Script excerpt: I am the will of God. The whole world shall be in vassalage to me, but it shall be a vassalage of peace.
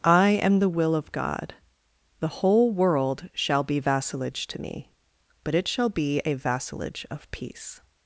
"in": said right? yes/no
no